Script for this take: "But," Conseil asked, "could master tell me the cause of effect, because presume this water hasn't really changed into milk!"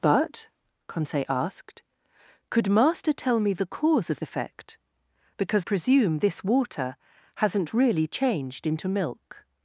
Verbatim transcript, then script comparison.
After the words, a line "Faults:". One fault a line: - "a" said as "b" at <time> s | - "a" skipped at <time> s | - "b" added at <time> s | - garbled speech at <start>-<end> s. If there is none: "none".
"But," Conseil asked, "could master tell me the cause of effect, because presume this water hasn't really changed into milk!"
Faults:
none